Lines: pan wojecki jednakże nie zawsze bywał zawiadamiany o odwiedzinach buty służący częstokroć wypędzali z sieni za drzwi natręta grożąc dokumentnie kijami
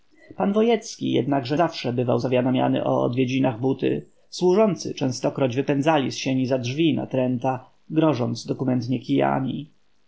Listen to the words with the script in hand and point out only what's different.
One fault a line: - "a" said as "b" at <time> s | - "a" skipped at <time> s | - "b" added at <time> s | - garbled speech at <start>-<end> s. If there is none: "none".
- "nie" skipped at 1.6 s